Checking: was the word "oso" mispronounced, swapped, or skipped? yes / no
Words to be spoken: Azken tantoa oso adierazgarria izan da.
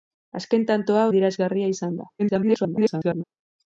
yes